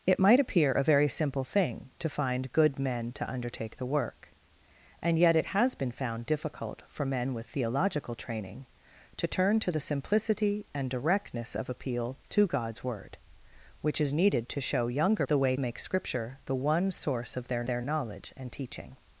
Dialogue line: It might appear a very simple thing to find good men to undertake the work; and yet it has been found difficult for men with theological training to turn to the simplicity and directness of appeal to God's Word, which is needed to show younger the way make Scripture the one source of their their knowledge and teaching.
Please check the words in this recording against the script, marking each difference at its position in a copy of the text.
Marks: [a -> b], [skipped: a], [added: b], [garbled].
It might appear a very simple thing to find good men to undertake the work; and yet it has been found difficult for men with theological training to turn to the simplicity and directness of appeal to God's Word, which is needed to show younger the way make Scripture the one source of their their knowledge and teaching.